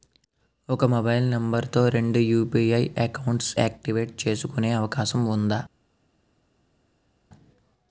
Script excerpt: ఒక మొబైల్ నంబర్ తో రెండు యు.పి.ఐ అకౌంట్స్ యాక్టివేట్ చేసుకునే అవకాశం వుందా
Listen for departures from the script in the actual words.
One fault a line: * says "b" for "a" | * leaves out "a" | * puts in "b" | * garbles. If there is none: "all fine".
all fine